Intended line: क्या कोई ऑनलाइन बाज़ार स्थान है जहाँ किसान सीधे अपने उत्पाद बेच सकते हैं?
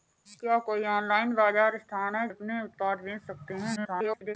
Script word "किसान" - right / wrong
wrong